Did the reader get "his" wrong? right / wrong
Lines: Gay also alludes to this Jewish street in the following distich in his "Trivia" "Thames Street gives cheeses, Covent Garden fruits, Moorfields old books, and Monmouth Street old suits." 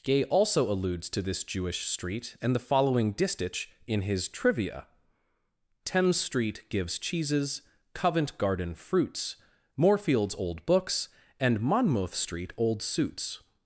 right